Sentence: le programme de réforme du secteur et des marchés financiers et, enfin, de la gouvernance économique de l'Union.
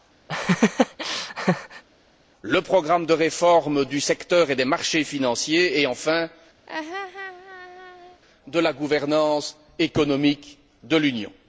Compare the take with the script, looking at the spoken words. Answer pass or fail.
pass